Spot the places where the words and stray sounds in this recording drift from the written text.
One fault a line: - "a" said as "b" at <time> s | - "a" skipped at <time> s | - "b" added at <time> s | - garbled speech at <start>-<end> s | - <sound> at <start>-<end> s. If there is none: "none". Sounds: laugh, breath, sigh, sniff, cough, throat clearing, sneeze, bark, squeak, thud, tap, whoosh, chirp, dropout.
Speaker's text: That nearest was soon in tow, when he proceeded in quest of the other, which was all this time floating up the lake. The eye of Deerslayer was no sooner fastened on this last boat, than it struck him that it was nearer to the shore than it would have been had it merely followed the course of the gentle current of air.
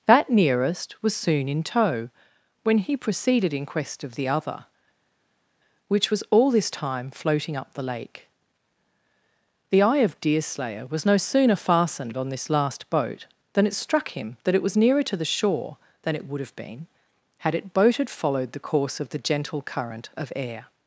- "merely" said as "boated" at 17.7 s